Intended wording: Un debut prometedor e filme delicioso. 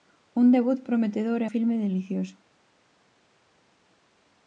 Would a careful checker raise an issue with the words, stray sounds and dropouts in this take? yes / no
no